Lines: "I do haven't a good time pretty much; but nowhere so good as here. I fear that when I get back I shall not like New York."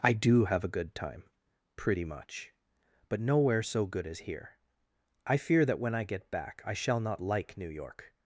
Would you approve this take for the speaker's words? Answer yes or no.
no